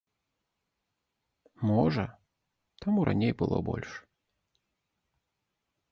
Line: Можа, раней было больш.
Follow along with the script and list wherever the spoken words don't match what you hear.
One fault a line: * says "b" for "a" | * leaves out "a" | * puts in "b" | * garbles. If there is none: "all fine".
* puts in "таму"